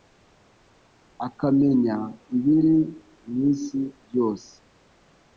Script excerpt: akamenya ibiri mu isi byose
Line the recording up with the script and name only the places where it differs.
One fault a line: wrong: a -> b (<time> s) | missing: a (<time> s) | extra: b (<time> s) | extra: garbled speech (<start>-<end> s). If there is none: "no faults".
no faults